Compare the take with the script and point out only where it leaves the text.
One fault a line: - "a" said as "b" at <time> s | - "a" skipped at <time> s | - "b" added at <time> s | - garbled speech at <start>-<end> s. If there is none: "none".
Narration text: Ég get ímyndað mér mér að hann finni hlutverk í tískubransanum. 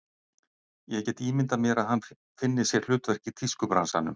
- "mér" skipped at 1.8 s
- "sér" added at 2.7 s